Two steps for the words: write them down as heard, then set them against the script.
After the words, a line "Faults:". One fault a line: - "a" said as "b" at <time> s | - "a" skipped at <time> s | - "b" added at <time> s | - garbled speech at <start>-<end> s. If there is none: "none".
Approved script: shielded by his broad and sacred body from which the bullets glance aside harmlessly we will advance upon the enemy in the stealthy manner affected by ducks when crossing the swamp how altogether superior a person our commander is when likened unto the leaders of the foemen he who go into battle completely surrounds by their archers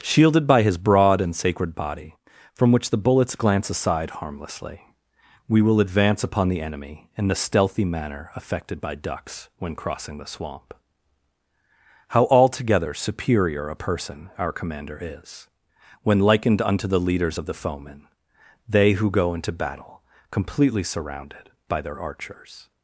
shielded by his broad and sacred body from which the bullets glance aside harmlessly we will advance upon the enemy in the stealthy manner affected by ducks when crossing the swamp how altogether superior a person our commander is when likened unto the leaders of the foemen they who go into battle completely surrounded by their archers
Faults:
- "he" said as "they" at 18.7 s
- "surrounds" said as "surrounded" at 20.8 s